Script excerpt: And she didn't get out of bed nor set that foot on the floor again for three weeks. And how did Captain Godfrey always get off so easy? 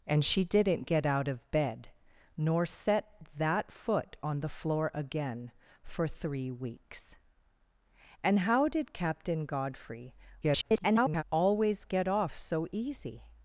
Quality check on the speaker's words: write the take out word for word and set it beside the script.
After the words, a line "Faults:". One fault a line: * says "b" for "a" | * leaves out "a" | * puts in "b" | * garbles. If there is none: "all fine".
And she didn't get out of bed nor set that foot on the floor again for three weeks. And how did Captain Godfrey [garbled] always get off so easy?
Faults:
* garbles